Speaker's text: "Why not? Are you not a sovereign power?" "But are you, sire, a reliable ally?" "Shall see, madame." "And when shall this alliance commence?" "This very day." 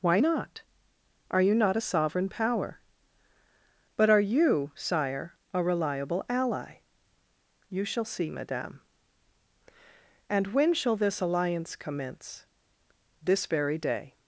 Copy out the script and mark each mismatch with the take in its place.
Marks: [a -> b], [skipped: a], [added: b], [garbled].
"Why not? Are you not a sovereign power?" "But are you, sire, a reliable ally?" [added: You] "Shall see, madame." "And when shall this alliance commence?" "This very day."